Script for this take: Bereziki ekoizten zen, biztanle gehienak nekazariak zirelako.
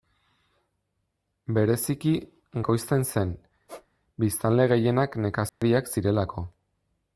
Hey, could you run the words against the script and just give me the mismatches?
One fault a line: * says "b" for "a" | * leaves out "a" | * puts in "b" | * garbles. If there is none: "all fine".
all fine